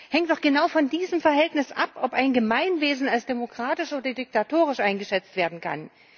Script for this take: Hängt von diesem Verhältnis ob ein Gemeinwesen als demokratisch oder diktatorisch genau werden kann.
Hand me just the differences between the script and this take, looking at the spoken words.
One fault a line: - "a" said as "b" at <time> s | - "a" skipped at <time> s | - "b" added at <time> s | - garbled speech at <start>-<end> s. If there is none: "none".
- "doch genau" added at 0.3 s
- "ab" added at 1.7 s
- "genau" said as "eingeschätzt" at 4.8 s